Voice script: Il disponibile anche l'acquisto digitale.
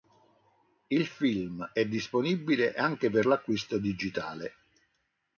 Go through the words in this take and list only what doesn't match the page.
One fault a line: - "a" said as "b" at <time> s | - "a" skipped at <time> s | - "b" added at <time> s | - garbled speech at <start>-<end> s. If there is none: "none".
- "film è" added at 1.1 s
- "per" added at 3.1 s